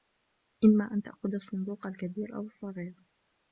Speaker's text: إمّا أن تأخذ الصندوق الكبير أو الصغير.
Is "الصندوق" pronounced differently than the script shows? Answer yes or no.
no